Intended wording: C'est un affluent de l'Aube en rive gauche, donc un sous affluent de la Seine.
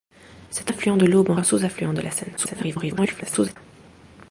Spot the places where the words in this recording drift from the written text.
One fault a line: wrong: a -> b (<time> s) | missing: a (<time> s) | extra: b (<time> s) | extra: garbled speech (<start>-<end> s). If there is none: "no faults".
missing: un (0.7 s)
missing: rive gauche donc (1.3 s)
extra: garbled speech (2.4-3.6 s)